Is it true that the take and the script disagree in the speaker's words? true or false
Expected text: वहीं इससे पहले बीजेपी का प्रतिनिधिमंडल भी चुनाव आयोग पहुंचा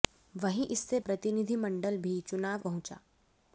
true